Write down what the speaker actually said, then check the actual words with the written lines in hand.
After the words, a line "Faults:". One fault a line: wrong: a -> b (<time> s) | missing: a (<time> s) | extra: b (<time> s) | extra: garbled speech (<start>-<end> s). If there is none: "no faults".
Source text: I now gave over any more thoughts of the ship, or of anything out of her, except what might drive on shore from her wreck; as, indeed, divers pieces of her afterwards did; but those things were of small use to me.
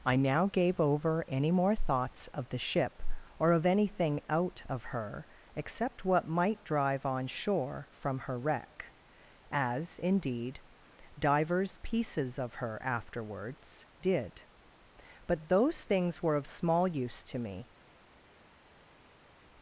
I now gave over any more thoughts of the ship, or of anything out of her, except what might drive on shore from her wreck; as, indeed, divers pieces of her afterwards did; but those things were of small use to me.
Faults:
no faults